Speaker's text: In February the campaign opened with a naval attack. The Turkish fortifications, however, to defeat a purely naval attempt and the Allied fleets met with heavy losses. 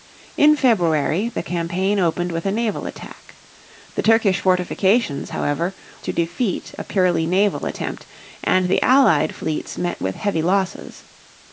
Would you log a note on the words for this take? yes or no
no